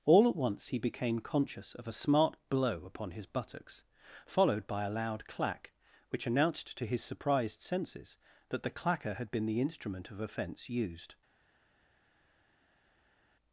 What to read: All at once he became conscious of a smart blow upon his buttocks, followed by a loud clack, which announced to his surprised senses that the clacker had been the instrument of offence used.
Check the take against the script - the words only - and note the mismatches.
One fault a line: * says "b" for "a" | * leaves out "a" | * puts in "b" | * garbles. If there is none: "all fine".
all fine